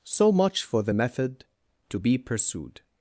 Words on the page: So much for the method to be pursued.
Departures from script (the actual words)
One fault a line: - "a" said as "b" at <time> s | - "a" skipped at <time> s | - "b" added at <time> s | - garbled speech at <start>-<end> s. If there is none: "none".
none